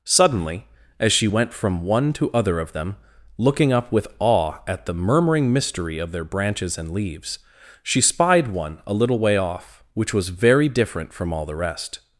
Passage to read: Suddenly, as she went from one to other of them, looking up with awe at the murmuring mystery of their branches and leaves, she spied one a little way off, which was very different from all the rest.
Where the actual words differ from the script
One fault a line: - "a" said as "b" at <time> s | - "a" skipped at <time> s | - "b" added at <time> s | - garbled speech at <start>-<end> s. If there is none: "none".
none